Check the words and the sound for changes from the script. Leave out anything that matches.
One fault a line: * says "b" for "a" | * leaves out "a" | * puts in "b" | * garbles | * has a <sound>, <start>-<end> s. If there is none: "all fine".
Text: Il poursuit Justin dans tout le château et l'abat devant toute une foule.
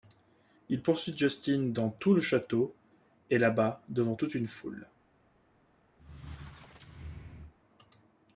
* has a squeak, 6.0-7.5 s